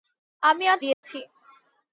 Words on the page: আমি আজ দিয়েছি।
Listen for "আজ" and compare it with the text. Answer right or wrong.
right